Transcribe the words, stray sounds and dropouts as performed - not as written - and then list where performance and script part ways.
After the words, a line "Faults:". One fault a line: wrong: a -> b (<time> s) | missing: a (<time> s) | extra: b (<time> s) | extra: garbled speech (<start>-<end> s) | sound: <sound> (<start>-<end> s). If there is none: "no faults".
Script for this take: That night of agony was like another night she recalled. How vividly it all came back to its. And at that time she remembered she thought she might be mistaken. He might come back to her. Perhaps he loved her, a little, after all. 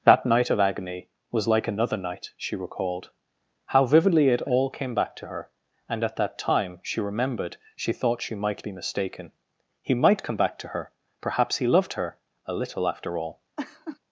That night of agony was like another night she recalled. How vividly it all came back to her. And at that time she remembered she thought she might be mistaken. He might come back to her. Perhaps he loved her, a little, after all.
Faults:
wrong: its -> her (5.3 s)
sound: laugh (13.6-14.0 s)